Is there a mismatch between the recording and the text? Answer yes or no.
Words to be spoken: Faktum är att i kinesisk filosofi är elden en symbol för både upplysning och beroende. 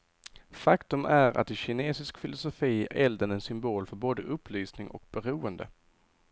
yes